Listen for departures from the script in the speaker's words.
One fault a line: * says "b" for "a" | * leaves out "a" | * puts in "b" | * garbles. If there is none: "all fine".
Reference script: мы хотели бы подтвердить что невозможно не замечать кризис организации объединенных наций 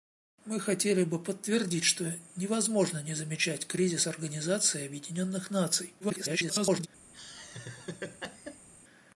* garbles